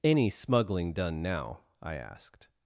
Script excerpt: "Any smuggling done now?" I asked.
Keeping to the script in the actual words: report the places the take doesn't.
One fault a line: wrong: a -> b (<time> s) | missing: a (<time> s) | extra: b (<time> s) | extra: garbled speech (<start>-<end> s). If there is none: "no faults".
no faults